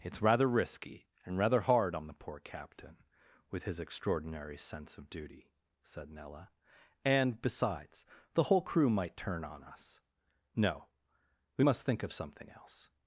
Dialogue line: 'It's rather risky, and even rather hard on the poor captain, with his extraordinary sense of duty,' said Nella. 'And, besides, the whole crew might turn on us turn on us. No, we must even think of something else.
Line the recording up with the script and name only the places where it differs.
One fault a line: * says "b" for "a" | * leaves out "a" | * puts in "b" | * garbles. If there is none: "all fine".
* leaves out "even"
* leaves out "turn on us"
* leaves out "even"